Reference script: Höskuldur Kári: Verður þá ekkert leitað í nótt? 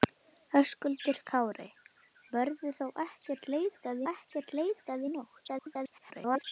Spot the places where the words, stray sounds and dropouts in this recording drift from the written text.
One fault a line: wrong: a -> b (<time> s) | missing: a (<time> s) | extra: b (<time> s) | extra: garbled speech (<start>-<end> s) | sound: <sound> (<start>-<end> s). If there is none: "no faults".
extra: ekkert leitað (4.1 s)
extra: garbled speech (5.5-6.4 s)